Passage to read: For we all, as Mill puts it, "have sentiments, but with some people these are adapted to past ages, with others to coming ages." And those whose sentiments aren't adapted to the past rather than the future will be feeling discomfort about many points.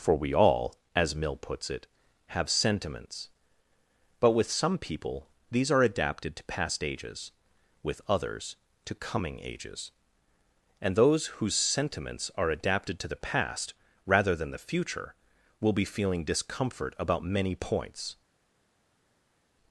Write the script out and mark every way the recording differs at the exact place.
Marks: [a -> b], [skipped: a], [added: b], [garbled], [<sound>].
For we all, as Mill puts it, "have sentiments, but with some people these are adapted to past ages, with others to coming ages." And those whose sentiments [aren't -> are] adapted to the past rather than the future will be feeling discomfort about many points.